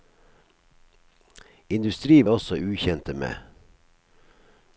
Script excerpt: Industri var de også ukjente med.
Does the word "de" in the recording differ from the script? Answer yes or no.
yes